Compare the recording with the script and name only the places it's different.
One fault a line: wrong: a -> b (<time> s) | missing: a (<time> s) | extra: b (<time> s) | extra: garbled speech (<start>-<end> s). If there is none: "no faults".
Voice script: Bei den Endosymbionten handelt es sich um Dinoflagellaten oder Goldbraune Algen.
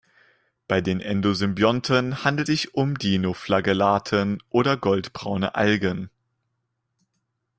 missing: es (2.5 s)